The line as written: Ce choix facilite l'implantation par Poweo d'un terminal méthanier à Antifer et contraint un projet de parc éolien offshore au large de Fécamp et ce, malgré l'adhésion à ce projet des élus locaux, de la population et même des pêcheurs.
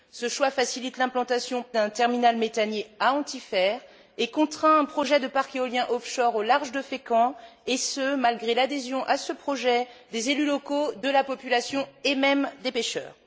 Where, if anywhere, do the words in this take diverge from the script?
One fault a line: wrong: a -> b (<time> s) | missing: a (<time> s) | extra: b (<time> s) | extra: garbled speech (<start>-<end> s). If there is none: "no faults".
missing: par Poweo (1.6 s)